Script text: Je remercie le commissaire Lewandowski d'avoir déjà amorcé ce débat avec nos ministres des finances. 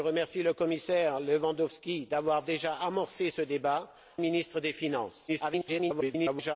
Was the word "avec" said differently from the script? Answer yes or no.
yes